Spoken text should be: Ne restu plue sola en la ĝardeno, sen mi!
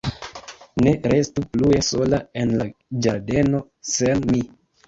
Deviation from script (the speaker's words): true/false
false